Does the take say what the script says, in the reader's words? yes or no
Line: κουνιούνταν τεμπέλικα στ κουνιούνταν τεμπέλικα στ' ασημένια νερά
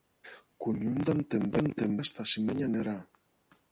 no